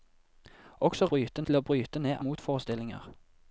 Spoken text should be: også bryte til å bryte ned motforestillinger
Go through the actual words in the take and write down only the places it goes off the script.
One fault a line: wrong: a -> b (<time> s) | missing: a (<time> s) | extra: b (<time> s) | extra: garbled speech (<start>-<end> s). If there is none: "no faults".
no faults